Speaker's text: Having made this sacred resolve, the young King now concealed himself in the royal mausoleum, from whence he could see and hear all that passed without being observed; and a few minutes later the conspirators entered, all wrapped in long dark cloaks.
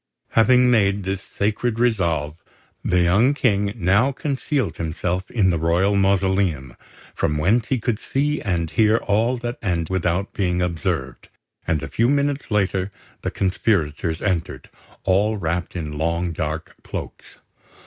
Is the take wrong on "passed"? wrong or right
wrong